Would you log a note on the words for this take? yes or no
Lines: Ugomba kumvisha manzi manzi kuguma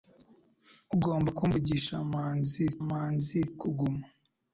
no